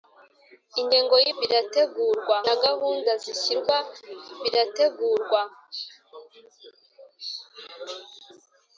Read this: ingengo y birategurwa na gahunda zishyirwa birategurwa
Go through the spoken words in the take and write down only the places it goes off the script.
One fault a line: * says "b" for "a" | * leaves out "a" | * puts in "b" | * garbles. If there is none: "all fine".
all fine